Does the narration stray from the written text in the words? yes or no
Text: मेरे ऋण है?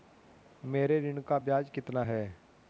yes